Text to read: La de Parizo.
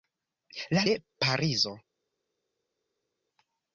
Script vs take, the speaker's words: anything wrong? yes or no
no